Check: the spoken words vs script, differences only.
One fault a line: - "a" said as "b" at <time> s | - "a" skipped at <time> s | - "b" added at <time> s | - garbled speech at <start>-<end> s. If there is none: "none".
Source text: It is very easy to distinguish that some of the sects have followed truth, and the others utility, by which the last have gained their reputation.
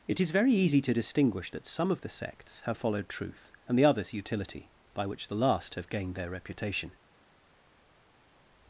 none